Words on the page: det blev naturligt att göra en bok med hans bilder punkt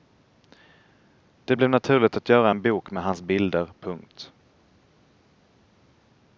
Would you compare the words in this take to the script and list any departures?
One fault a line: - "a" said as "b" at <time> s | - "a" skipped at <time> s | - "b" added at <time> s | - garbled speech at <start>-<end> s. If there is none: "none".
none